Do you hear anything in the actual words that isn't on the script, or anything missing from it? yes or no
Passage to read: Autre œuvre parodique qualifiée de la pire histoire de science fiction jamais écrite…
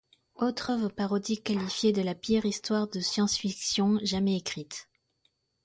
no